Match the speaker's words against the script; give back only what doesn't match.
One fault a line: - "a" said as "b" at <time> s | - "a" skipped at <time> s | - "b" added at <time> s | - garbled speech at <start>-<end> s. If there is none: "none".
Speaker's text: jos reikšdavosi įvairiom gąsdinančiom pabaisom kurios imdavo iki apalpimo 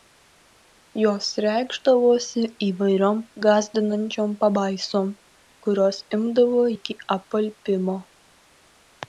none